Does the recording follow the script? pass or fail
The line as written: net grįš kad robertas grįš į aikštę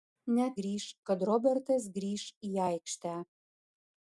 pass